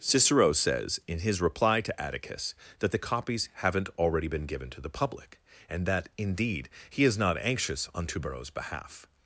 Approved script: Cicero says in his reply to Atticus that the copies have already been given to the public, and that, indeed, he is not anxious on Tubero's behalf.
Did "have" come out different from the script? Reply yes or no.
yes